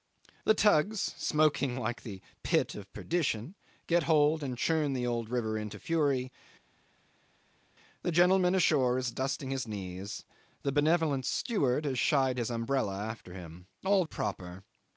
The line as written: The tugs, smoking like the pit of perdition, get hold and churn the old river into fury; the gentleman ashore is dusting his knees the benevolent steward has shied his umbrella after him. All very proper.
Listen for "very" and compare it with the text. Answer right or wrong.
wrong